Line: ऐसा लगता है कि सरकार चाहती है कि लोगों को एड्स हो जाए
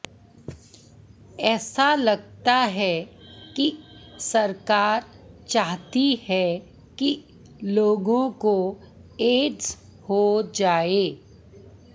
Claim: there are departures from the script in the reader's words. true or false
false